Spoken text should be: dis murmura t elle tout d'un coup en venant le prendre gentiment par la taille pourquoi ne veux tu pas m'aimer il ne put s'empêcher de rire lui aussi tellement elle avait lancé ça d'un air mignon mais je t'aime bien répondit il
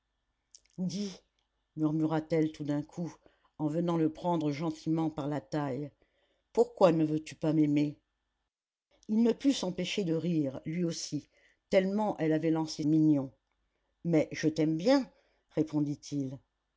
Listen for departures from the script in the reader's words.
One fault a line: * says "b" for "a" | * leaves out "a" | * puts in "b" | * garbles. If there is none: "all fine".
* leaves out "ça d'un air"